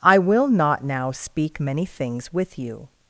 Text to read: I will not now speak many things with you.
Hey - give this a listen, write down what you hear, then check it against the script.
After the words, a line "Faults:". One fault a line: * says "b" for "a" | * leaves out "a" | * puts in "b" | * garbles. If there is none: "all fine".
I will not now speak many things with you.
Faults:
all fine